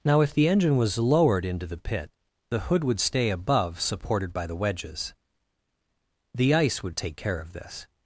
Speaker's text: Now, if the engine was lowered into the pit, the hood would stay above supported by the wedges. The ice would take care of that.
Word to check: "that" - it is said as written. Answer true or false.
false